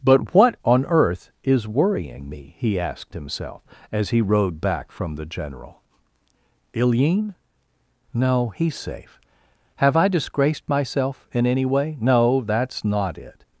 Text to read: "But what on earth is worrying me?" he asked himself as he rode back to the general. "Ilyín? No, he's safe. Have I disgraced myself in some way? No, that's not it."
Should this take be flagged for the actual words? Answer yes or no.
yes